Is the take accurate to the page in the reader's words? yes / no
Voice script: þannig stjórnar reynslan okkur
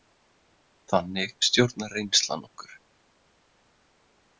yes